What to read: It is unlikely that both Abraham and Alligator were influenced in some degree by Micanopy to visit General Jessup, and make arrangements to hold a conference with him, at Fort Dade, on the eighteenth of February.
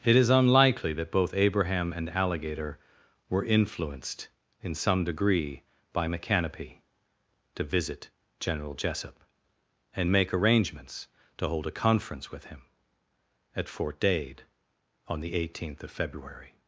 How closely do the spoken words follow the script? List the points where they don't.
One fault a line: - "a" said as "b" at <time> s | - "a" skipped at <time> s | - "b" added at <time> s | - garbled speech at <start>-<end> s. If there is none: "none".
none